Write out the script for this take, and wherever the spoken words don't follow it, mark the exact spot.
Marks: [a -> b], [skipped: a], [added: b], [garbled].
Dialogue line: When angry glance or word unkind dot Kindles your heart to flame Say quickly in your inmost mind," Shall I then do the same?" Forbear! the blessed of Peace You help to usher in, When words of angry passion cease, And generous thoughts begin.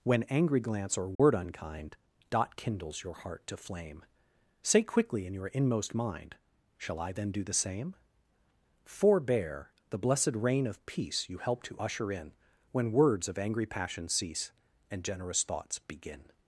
When angry glance or word unkind dot Kindles your heart to flame Say quickly in your inmost mind," Shall I then do the same?" Forbear! the blessed [added: reign] of Peace You help to usher in, When words of angry passion cease, And generous thoughts begin.